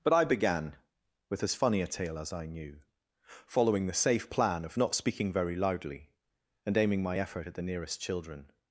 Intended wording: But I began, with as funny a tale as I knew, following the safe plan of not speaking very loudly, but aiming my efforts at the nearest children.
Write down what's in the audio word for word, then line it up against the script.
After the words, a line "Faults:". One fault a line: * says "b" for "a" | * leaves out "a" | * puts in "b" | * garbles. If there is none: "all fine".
But I began, with as funny a tale as I knew, following the safe plan of not speaking very loudly, and aiming my effort at the nearest children.
Faults:
* says "and" for "but"
* says "effort" for "efforts"